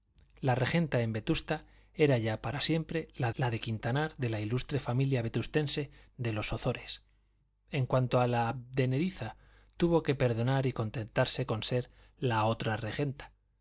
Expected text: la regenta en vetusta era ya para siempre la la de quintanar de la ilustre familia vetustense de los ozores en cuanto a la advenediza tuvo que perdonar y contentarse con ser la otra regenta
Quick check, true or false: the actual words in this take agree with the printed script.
true